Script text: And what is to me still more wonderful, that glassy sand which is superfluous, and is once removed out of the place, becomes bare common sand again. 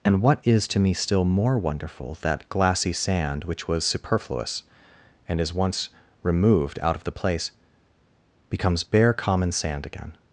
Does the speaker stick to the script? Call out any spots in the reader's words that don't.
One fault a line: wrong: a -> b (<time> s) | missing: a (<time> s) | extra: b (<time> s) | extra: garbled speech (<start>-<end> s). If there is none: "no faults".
wrong: is -> was (3.7 s)